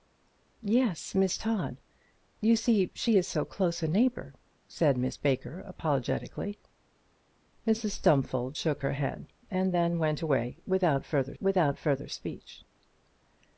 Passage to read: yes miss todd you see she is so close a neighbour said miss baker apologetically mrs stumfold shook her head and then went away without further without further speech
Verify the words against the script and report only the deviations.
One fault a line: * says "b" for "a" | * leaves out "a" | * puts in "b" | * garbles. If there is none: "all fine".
all fine